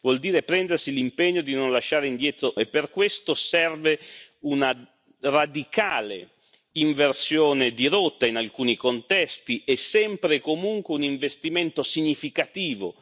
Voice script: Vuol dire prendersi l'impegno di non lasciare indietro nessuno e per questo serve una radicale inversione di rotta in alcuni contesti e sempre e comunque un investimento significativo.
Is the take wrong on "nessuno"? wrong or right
wrong